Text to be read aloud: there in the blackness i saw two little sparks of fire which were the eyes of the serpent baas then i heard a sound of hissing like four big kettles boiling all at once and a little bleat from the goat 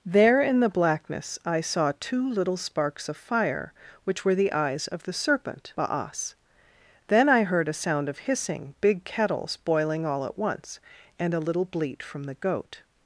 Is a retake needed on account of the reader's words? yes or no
yes